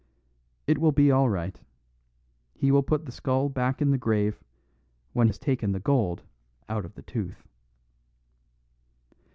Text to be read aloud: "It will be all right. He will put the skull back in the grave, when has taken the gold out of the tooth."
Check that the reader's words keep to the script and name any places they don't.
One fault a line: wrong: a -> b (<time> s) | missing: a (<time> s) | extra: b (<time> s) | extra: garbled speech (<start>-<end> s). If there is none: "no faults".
no faults